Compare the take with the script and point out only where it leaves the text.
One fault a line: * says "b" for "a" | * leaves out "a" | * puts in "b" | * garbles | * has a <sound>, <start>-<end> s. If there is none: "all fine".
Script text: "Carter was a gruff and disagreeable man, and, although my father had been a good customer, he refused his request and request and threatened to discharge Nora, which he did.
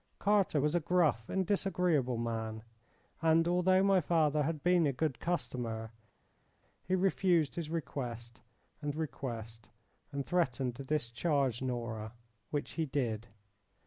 all fine